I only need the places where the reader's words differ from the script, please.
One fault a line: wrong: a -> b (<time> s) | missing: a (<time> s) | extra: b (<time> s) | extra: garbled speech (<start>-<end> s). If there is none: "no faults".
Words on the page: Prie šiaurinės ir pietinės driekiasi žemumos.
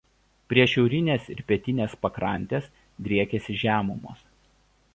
extra: pakrantės (2.0 s)